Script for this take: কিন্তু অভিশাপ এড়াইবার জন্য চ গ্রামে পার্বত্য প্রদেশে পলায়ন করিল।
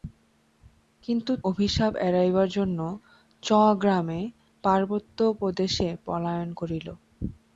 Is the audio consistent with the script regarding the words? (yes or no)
yes